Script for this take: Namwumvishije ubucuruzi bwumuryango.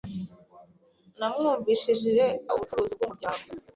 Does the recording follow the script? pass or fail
pass